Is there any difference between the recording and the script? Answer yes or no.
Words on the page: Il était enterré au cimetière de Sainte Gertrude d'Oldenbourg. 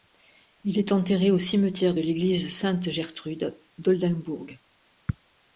yes